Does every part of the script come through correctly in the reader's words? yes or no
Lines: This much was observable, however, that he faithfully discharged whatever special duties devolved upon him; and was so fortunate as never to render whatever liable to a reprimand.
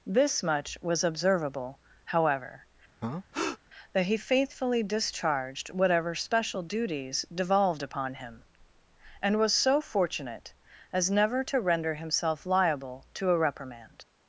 no